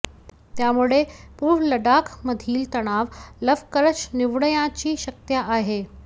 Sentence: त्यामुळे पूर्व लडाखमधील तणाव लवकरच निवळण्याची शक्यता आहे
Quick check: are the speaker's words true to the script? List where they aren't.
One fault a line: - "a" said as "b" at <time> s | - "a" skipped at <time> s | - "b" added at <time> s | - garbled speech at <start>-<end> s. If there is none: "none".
none